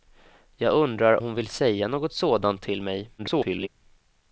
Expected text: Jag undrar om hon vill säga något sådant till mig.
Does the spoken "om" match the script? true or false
false